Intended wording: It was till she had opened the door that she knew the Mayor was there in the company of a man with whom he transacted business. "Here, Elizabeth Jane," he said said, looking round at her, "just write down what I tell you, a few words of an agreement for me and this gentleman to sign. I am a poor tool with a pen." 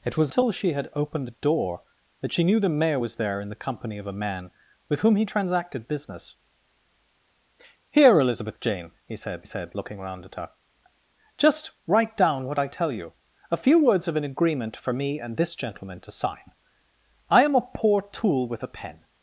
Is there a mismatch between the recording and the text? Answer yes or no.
no